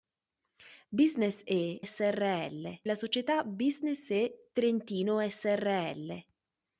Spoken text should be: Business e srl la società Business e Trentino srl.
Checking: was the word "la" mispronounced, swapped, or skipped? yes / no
no